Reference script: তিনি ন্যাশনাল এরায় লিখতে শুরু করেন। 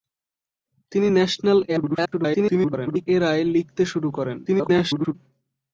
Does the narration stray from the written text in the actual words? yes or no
yes